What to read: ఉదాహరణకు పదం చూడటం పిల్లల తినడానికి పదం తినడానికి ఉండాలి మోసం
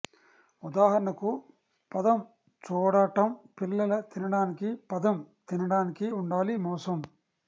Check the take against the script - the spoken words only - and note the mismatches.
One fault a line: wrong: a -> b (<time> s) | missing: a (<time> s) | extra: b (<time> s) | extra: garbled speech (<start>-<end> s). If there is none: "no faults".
no faults